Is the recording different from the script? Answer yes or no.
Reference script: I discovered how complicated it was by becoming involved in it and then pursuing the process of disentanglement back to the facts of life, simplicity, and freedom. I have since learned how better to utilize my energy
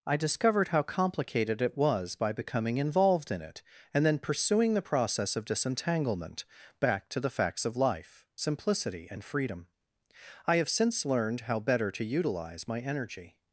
no